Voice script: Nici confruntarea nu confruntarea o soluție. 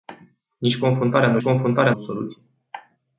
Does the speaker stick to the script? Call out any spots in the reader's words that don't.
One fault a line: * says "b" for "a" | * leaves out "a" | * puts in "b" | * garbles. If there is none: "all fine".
all fine